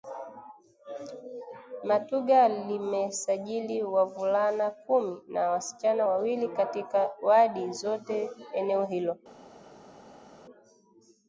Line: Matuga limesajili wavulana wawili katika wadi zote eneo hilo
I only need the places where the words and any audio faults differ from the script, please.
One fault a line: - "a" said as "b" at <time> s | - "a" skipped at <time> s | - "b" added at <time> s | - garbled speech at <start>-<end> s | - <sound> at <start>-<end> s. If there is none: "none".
- "kumi na wasichana" added at 4.7 s